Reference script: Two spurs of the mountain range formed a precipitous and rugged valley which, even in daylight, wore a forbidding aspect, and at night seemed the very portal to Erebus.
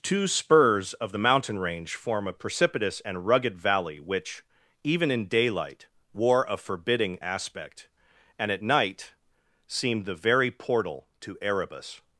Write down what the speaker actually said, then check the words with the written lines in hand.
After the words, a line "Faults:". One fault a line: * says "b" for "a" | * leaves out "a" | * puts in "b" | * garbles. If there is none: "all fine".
Two spurs of the mountain range form a precipitous and rugged valley which, even in daylight, wore a forbidding aspect, and at night seemed the very portal to Erebus.
Faults:
* says "form" for "formed"